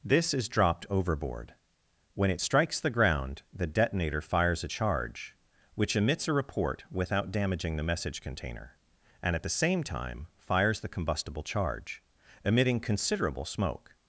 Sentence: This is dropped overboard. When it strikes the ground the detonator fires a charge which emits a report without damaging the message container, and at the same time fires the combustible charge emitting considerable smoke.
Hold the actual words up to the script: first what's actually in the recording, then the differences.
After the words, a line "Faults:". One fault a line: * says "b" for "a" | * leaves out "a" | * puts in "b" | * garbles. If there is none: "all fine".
This is dropped overboard. When it strikes the ground the detonator fires a charge which emits a report without damaging the message container, and at the same time fires the combustible charge emitting considerable smoke.
Faults:
all fine